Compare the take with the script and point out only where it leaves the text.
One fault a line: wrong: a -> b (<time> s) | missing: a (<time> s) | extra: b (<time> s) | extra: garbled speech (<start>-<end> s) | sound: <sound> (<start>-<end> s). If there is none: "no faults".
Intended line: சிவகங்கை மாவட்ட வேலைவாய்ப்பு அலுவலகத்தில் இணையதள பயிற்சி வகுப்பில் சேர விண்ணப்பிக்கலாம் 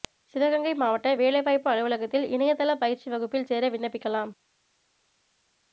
no faults